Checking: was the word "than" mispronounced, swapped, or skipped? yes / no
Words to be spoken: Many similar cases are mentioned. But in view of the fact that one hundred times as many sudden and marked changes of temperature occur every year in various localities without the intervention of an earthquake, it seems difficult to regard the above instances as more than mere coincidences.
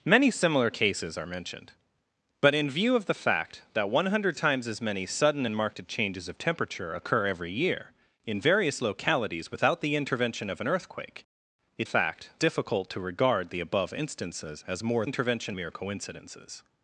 yes